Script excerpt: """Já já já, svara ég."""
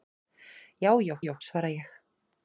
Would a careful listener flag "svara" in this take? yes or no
no